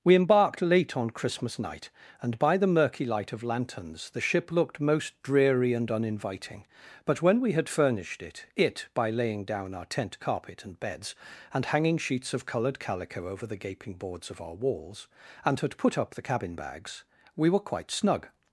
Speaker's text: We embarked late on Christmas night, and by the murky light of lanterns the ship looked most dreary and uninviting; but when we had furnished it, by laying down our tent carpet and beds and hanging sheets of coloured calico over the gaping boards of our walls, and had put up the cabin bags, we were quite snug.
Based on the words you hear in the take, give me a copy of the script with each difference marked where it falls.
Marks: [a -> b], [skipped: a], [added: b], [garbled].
We embarked late on Christmas night, and by the murky light of lanterns the ship looked most dreary and uninviting; but when we had furnished it, [added: it] by laying down our tent carpet and beds and hanging sheets of coloured calico over the gaping boards of our walls, and had put up the cabin bags, we were quite snug.